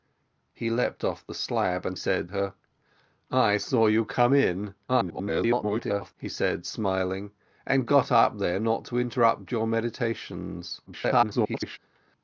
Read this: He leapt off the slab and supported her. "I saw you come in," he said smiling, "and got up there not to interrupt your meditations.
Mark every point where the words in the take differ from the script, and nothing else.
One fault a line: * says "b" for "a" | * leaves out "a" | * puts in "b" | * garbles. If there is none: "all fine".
* says "said" for "supported"
* garbles
* garbles